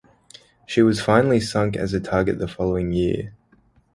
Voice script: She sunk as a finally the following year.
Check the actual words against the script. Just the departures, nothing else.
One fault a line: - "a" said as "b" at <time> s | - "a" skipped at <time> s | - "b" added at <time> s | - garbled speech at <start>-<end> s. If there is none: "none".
- "was finally" added at 0.8 s
- "finally" said as "target" at 2.0 s